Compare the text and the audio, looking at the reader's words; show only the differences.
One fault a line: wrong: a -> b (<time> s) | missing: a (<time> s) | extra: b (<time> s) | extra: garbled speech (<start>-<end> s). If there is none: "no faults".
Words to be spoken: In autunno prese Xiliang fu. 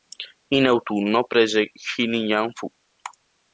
no faults